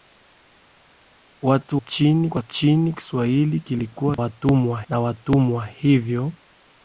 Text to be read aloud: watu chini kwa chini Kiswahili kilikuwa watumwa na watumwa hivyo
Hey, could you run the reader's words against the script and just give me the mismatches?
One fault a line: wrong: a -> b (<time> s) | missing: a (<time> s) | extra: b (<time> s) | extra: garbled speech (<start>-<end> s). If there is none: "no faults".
no faults